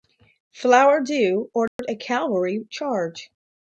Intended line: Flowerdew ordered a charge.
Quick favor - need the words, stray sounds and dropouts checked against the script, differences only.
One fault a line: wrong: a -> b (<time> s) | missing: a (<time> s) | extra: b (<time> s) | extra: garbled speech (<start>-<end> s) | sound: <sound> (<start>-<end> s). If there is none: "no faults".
sound: dropout (1.7-1.8 s)
extra: cavalry (2.0 s)